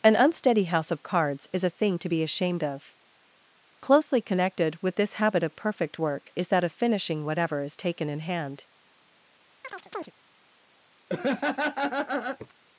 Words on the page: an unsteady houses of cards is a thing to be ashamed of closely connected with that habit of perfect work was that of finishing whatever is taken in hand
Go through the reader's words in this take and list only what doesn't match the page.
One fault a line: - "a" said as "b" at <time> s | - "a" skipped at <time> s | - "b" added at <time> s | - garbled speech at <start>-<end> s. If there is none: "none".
- "houses" said as "house" at 0.6 s
- "that" said as "this" at 5.0 s
- "was" said as "is" at 6.3 s